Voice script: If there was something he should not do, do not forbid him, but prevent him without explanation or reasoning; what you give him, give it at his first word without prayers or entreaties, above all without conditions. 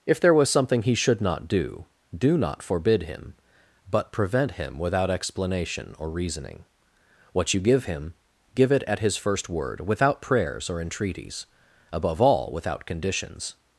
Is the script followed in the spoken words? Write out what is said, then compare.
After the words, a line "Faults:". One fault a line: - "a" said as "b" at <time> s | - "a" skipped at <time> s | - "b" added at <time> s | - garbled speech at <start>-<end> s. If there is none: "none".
If there was something he should not do, do not forbid him, but prevent him without explanation or reasoning; what you give him, give it at his first word without prayers or entreaties, above all without conditions.
Faults:
none